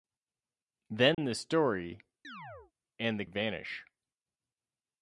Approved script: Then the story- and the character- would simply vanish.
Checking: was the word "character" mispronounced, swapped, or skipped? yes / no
yes